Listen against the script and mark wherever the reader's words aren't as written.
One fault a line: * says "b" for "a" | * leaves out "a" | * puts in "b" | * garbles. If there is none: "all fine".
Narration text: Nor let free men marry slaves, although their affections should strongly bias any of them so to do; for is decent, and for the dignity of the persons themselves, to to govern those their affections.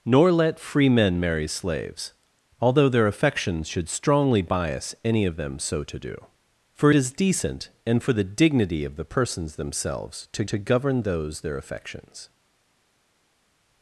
all fine